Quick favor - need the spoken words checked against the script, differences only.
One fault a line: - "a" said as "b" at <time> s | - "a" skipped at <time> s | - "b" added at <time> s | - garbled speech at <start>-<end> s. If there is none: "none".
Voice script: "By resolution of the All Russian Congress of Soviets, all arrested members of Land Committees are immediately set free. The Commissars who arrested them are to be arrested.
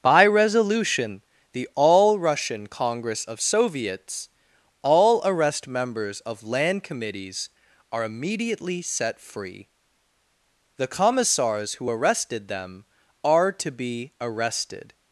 - "of" skipped at 1.2 s
- "arrested" said as "arrest" at 5.2 s